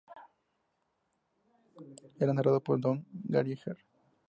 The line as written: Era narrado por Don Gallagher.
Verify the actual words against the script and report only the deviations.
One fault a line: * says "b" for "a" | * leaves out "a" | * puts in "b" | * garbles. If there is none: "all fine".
all fine